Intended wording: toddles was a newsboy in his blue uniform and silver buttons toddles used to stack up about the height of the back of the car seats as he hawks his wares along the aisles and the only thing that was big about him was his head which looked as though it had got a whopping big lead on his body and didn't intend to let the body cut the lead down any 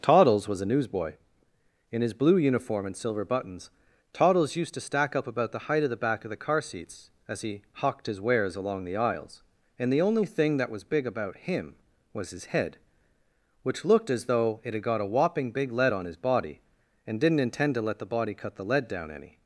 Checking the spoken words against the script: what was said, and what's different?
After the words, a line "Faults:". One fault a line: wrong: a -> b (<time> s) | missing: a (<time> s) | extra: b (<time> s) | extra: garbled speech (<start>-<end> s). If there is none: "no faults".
toddles was a newsboy in his blue uniform and silver buttons toddles used to stack up about the height of the back of the car seats as he hawked his wares along the aisles and the only thing that was big about him was his head which looked as though it had got a whopping big lead on his body and didn't intend to let the body cut the lead down any
Faults:
wrong: hawks -> hawked (7.7 s)